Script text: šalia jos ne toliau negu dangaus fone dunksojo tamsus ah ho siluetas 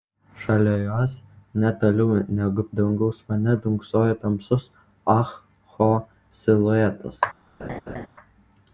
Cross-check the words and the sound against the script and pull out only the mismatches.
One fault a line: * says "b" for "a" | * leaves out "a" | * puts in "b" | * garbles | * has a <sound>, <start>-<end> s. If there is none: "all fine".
* has a laugh, 7.6-8.1 s